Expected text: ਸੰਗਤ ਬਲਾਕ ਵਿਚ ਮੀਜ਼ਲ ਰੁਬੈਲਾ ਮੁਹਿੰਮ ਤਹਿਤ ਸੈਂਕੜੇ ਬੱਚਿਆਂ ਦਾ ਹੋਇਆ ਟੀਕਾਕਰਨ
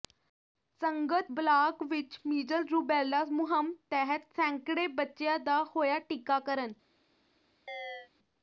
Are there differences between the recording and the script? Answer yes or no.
no